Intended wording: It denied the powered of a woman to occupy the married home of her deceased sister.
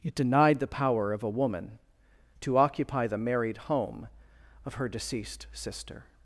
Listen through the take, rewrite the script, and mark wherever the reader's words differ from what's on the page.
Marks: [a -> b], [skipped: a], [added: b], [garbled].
It denied the [powered -> power] of a woman to occupy the married home of her deceased sister.